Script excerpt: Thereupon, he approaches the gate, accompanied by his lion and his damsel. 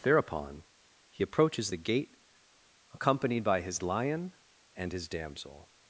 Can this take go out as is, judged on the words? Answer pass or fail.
pass